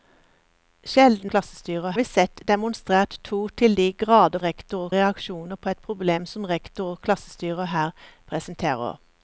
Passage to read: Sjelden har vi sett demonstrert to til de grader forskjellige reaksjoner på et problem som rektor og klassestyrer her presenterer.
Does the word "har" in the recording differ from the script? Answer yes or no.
yes